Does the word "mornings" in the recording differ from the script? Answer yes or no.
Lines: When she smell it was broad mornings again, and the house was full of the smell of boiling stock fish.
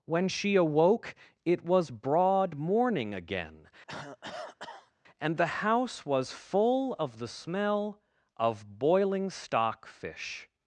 yes